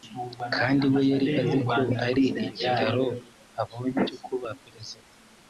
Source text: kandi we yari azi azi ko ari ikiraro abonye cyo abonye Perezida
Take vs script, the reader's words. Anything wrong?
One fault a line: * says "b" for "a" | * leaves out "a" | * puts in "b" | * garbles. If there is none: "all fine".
* leaves out "azi"
* says "kuba" for "abonye"